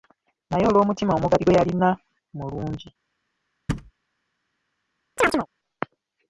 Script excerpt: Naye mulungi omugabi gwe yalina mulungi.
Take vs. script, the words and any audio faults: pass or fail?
fail